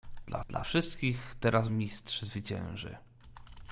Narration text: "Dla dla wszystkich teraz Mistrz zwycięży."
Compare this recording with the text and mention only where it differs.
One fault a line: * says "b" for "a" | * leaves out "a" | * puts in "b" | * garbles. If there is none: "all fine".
all fine